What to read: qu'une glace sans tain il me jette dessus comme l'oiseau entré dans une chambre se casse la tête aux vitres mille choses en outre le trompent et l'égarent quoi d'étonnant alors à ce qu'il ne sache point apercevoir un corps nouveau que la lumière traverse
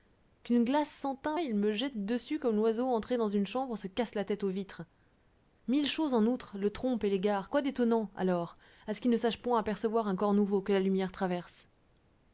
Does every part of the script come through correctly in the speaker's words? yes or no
yes